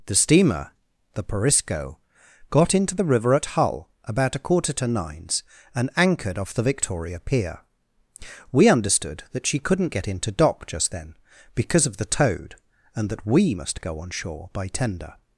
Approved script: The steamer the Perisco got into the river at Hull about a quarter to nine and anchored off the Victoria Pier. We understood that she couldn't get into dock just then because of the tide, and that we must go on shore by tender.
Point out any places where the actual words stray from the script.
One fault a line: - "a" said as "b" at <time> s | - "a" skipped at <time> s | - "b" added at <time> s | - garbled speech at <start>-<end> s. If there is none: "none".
- "nine" said as "nines" at 4.9 s
- "tide" said as "toad" at 12.1 s